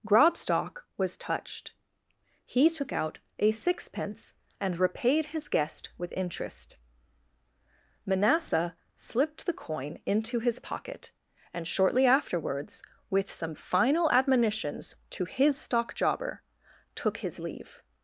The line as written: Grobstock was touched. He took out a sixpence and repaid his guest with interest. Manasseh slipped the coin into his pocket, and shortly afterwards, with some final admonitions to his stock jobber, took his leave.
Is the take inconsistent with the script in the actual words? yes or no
no